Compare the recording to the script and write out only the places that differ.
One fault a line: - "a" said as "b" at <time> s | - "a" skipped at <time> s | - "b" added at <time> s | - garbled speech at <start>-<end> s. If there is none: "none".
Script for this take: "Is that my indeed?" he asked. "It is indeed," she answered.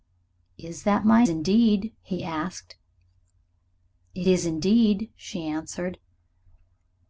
none